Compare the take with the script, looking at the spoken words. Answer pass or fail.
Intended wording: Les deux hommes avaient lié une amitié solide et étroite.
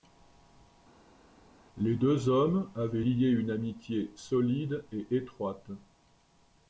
pass